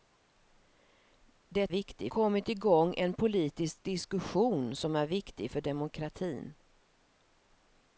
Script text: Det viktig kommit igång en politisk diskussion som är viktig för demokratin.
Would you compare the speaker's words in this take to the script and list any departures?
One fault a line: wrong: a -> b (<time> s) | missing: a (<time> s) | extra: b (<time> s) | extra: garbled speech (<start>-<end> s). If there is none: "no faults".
no faults